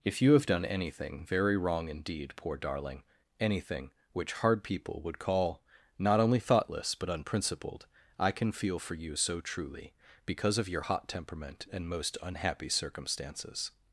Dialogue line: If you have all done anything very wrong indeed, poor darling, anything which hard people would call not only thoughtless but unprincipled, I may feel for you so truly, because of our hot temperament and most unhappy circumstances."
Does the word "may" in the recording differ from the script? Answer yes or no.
yes